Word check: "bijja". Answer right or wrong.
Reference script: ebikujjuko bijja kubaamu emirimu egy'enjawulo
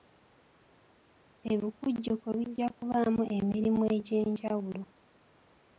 right